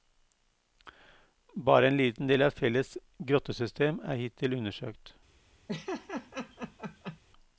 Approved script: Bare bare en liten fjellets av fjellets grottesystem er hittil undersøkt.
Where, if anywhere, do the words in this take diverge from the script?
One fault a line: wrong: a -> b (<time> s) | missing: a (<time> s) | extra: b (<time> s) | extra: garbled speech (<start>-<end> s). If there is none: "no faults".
missing: bare (1.9 s)
wrong: fjellets -> del (2.3 s)